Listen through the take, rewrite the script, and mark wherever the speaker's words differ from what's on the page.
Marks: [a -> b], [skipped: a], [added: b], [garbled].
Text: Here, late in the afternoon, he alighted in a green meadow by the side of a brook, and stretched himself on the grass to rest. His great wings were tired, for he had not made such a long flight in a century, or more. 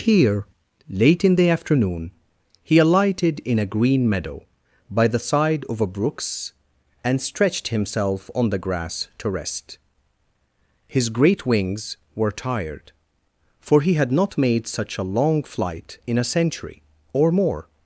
Here, late in the afternoon, he alighted in a green meadow by the side of a [brook, -> brooks] and stretched himself on the grass to rest. His great wings were tired, for he had not made such a long flight in a century, or more.